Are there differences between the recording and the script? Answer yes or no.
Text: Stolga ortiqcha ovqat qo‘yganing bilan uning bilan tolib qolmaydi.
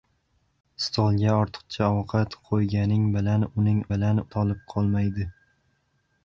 no